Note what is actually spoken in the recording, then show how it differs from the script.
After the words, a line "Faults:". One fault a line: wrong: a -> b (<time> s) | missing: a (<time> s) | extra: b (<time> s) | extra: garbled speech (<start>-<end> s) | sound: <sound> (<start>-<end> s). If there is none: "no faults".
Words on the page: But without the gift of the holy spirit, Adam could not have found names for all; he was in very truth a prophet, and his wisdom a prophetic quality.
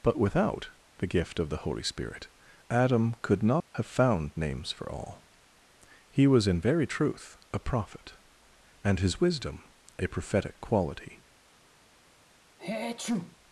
But without the gift of the holy spirit, Adam could not have found names for all; he was in very truth a prophet, and his wisdom a prophetic quality.
Faults:
sound: dropout (3.6-3.7 s)
sound: sneeze (12.6-13.4 s)